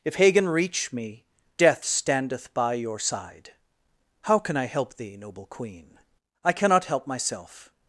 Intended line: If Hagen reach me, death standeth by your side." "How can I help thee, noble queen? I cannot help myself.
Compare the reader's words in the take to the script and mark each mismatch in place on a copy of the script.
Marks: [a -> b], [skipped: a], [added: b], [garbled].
If Hagen reach me, death standeth by your side." "How can I help thee, noble queen? I cannot help myself.